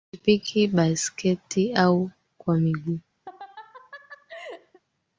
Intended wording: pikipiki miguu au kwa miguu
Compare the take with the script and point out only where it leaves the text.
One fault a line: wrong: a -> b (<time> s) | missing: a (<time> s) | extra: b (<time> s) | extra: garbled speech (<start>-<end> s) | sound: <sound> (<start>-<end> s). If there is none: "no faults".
wrong: miguu -> baisketi (0.7 s)
sound: laugh (3.3-4.8 s)